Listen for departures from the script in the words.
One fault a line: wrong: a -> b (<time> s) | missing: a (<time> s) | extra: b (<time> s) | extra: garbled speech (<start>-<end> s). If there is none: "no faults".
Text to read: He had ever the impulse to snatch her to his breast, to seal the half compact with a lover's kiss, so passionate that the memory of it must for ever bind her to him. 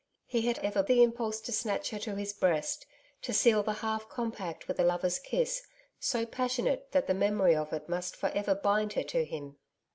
no faults